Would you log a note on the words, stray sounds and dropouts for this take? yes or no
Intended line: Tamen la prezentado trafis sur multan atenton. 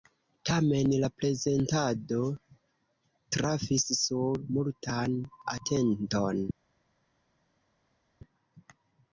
no